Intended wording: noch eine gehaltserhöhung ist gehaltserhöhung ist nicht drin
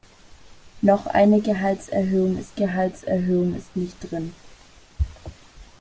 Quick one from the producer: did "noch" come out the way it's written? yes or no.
yes